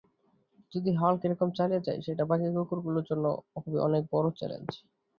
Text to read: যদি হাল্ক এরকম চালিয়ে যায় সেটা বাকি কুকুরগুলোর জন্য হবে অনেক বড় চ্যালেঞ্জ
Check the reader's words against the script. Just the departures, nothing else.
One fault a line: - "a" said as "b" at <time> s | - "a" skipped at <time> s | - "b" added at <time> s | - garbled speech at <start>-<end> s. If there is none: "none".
none